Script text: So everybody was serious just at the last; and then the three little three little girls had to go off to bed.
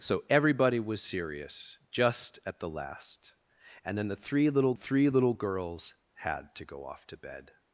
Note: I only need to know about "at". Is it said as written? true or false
true